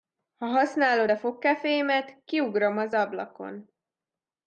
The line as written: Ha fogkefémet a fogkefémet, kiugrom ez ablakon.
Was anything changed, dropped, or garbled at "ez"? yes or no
yes